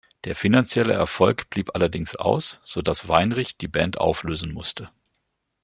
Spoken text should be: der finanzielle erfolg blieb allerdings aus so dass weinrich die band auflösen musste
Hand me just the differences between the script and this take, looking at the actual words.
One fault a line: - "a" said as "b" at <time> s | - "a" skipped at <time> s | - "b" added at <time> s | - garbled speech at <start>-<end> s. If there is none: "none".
none